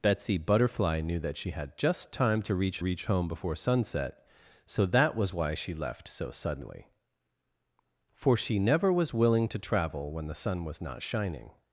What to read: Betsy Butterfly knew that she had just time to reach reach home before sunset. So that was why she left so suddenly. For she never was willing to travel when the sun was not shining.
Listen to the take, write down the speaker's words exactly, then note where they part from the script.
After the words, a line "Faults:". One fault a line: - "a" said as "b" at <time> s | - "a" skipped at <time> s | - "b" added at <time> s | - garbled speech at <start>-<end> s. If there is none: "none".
Betsy Butterfly knew that she had just time to reach reach home before sunset. So that was why she left so suddenly. For she never was willing to travel when the sun was not shining.
Faults:
none